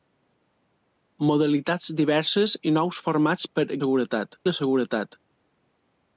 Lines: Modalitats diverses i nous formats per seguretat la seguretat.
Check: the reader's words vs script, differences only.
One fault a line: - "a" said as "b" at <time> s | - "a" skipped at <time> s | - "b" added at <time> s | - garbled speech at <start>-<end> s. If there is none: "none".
none